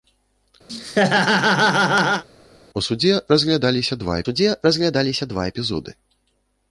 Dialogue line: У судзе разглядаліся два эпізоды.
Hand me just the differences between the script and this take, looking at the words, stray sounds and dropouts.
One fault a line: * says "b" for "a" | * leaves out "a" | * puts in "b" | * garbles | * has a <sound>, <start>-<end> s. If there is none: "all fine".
* has a laugh, 0.7-2.2 s
* puts in "судзе разглядаліся два"